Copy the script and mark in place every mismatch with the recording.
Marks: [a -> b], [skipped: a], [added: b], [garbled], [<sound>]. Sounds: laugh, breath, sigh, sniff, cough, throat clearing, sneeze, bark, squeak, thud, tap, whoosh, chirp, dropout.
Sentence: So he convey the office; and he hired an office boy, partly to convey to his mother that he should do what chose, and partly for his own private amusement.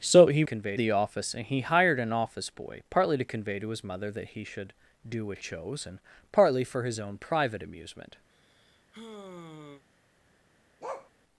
So he convey the office; and he hired an office boy, partly to convey to his mother that he should do what chose, and partly for his own private amusement. [sigh] [bark]